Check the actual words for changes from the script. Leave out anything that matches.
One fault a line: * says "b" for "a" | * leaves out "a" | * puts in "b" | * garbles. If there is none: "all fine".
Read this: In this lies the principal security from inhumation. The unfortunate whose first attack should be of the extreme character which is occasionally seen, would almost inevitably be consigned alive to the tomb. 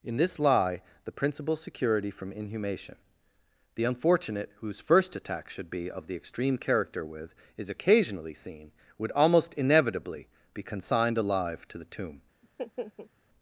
* says "lie" for "lies"
* says "with" for "which"